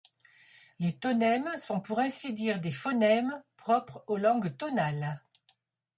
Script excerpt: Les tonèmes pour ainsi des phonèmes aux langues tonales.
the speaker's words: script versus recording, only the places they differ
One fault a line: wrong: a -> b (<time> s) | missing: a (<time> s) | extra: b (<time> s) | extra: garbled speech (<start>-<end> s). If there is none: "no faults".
extra: sont (1.6 s)
extra: dire (2.3 s)
extra: propres (3.5 s)